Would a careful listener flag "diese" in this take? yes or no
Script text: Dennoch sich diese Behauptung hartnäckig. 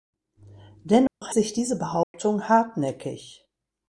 no